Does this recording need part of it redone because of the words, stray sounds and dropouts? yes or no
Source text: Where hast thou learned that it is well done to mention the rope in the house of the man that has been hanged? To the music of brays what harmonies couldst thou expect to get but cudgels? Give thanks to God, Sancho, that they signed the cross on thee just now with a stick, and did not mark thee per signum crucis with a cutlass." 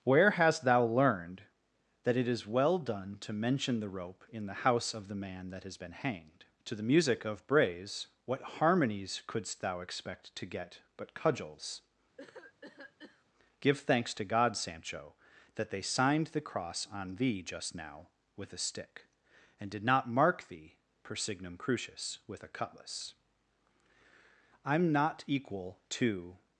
yes